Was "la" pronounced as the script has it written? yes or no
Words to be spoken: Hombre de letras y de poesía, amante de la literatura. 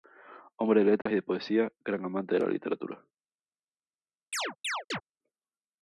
yes